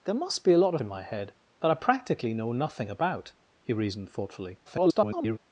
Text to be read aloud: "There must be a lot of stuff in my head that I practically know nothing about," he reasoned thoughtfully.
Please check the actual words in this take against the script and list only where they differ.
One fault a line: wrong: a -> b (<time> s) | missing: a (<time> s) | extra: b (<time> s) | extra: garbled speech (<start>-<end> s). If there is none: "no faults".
missing: stuff (0.8 s)
extra: garbled speech (4.6-5.4 s)